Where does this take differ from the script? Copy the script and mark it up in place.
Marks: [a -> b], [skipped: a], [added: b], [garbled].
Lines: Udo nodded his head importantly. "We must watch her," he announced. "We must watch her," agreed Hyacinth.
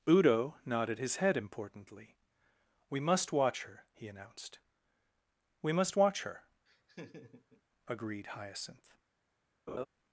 Udo nodded his head importantly. "We must watch her," he announced. "We must watch her," agreed Hyacinth.